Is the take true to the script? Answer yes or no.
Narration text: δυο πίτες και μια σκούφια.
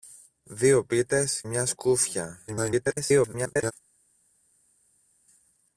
no